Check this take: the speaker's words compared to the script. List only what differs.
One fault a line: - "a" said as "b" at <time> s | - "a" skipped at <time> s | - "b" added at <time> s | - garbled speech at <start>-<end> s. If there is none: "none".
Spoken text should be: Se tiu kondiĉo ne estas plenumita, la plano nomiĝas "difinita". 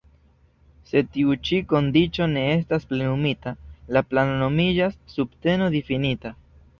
- "ĉi" added at 1.5 s
- "subteno" added at 5.2 s